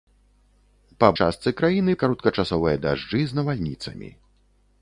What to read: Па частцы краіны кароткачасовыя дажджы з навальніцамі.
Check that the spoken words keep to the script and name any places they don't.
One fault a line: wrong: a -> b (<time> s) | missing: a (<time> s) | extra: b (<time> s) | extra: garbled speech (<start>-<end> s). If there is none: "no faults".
no faults